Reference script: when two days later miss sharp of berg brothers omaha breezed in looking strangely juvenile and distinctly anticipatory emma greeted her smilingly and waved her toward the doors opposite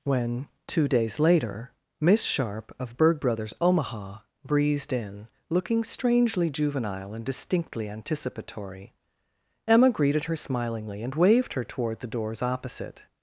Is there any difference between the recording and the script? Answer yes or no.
no